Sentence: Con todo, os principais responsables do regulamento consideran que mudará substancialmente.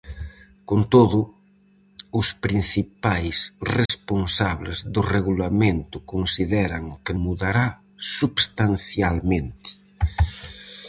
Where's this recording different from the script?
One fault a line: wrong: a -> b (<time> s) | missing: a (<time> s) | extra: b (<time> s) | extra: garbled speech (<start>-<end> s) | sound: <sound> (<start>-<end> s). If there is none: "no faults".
sound: dropout (3.9-3.9 s)